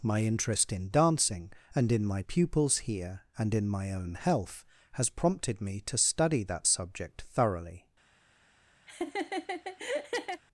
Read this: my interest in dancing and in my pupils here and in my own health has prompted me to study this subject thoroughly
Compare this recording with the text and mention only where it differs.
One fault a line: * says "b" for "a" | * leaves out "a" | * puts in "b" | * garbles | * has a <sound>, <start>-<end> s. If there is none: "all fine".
* says "that" for "this"
* has a laugh, 8.9-10.4 s